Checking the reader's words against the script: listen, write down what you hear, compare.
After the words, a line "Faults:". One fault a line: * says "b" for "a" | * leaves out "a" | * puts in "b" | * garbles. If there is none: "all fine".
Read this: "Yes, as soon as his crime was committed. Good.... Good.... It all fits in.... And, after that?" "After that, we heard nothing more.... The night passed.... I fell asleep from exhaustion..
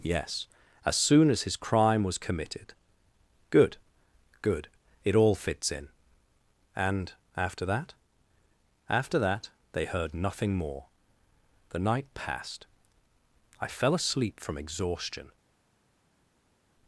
"Yes, as soon as his crime was committed. Good.... Good.... It all fits in.... And, after that?" "After that, they heard nothing more.... The night passed.... I fell asleep from exhaustion..
Faults:
* says "they" for "we"